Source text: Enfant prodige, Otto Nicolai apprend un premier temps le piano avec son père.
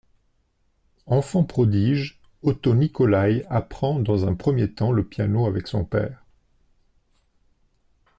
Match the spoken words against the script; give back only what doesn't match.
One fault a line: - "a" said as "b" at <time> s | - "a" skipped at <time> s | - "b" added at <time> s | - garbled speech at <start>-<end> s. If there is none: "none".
- "dans" added at 4.0 s